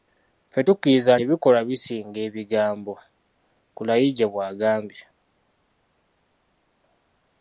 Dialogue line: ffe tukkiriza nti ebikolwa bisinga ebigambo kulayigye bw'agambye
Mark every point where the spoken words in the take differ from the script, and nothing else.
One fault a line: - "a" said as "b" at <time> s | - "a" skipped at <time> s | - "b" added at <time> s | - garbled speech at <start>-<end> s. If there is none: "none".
- "nti" skipped at 1.1 s